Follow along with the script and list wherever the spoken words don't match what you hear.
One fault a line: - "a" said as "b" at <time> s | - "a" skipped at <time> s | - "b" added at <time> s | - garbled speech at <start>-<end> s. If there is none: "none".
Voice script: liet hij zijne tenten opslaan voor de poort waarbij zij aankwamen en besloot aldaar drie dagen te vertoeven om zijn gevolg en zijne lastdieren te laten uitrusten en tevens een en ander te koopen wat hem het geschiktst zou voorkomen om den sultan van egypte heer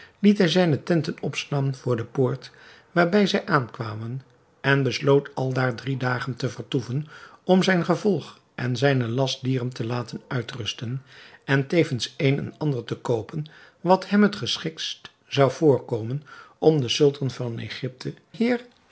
none